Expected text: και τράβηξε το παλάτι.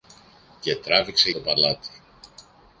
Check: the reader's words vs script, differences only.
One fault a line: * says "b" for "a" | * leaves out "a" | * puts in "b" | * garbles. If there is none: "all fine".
all fine